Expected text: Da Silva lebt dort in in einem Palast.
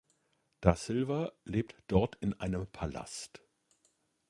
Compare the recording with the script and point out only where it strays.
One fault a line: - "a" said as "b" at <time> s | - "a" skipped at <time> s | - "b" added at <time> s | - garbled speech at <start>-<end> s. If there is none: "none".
- "in" skipped at 2.4 s